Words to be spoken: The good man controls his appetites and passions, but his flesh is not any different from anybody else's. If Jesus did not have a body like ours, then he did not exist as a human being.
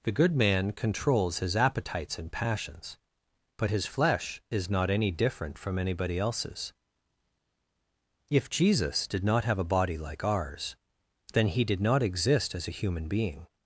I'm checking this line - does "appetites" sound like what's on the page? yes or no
yes